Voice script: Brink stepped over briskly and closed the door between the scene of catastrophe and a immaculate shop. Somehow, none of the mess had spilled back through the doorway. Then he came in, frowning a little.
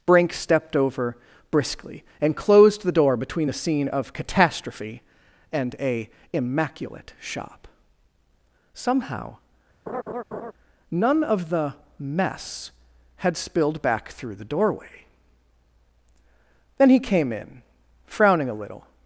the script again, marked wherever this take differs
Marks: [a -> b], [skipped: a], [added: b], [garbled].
Brink stepped over briskly and closed the door between the scene of catastrophe and a immaculate shop. Somehow, none of the mess had spilled back through the doorway. Then he came in, frowning a little.